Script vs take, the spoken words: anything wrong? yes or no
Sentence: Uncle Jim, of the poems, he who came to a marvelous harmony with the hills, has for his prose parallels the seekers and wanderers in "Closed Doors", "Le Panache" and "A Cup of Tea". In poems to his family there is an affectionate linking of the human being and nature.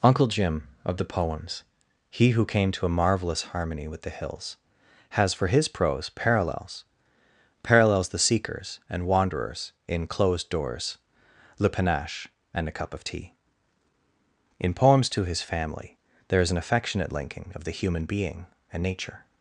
yes